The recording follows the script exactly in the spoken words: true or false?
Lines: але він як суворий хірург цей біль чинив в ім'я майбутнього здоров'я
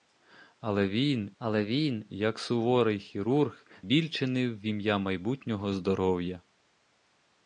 false